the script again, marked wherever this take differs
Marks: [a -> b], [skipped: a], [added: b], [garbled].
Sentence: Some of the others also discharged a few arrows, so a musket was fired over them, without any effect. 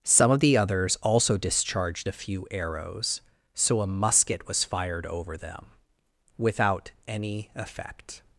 Some of the others also discharged a few arrows, so a musket was fired over them, without any effect.